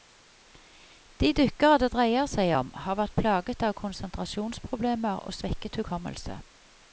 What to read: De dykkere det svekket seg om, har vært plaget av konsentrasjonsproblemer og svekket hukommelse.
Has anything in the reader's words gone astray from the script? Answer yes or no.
yes